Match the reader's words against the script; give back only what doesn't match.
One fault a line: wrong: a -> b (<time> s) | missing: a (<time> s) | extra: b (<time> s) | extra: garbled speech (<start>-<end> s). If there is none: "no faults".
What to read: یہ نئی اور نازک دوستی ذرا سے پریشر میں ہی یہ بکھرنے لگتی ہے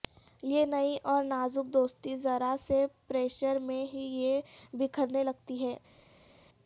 no faults